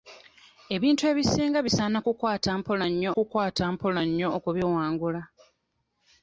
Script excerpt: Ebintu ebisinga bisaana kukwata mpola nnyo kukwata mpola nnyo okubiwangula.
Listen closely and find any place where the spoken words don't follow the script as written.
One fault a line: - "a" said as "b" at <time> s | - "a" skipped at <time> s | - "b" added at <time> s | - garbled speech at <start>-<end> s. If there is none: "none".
none